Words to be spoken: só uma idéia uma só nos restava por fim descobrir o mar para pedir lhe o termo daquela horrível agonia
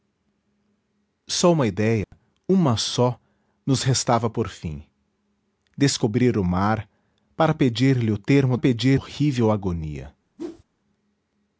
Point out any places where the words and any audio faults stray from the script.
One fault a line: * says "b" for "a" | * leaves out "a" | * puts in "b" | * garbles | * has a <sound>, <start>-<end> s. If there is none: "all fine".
* has a dropout, 2.0-2.1 s
* says "pedir" for "daquela"
* has a whoosh, 10.4-10.6 s